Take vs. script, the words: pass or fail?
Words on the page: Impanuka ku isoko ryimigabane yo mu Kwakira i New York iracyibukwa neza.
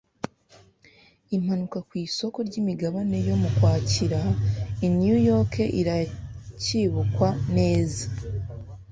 pass